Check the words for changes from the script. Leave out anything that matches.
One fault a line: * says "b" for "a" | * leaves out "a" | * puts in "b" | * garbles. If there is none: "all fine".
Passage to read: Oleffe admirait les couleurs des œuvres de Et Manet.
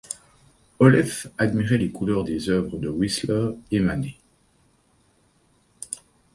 * puts in "Whistler"